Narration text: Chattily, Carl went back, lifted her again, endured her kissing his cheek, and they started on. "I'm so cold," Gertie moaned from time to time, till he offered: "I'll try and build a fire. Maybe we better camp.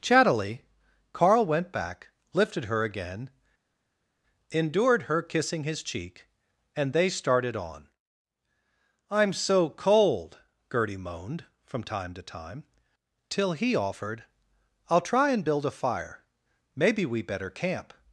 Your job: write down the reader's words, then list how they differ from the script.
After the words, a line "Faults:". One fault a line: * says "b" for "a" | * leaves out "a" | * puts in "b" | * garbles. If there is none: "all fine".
Chattily, Carl went back, lifted her again, endured her kissing his cheek, and they started on. "I'm so cold," Gertie moaned from time to time, till he offered: "I'll try and build a fire. Maybe we better camp.
Faults:
all fine